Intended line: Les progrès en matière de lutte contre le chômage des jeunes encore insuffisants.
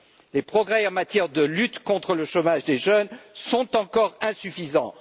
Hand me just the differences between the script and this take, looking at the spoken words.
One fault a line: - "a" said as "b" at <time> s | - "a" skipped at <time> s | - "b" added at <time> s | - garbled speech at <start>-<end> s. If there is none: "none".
- "sont" added at 3.3 s